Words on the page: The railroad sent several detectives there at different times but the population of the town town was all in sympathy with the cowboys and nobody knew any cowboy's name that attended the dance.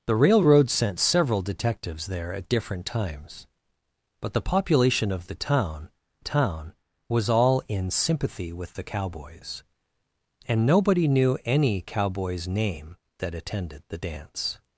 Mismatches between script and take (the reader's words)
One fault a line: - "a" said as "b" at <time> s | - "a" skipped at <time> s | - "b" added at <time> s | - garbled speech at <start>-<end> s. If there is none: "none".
none